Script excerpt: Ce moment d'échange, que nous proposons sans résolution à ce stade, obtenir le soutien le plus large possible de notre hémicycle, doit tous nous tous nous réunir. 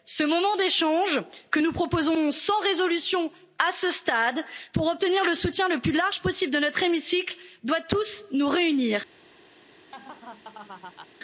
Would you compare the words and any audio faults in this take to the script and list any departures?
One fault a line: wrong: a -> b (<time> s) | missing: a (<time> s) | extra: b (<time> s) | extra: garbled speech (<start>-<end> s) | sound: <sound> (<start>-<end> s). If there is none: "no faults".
extra: pour (4.7 s)
missing: tous nous (8.5 s)
sound: laugh (9.9-11.1 s)